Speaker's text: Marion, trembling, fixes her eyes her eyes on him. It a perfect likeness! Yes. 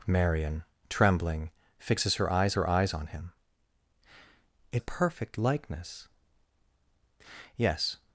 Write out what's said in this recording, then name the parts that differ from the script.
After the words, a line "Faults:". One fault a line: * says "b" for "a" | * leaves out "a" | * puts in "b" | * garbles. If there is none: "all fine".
Marion, trembling, fixes her eyes her eyes on him. It a perfect likeness! Yes.
Faults:
all fine